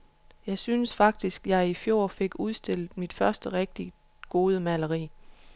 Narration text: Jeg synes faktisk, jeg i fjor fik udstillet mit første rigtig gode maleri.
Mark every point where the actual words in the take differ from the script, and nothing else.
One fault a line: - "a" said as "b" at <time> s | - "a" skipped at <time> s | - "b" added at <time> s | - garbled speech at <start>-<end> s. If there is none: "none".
none